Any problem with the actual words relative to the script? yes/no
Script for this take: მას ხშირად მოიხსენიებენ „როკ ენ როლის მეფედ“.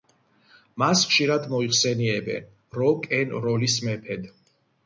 no